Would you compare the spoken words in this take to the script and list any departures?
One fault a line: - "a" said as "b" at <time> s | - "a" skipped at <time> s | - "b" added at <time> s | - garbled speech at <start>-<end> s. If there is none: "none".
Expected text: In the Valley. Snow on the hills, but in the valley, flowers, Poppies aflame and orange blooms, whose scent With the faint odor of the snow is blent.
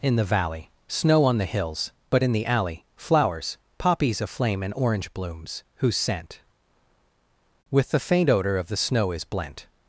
- "valley" said as "alley" at 2.5 s